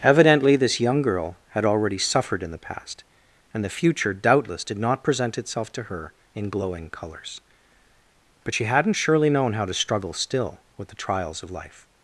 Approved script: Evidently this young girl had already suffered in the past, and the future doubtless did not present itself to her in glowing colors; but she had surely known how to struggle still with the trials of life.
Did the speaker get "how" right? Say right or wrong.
right